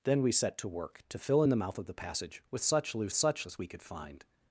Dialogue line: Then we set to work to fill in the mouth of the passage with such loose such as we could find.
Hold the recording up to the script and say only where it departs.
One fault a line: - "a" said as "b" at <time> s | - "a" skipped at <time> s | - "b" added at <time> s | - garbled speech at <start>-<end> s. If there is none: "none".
none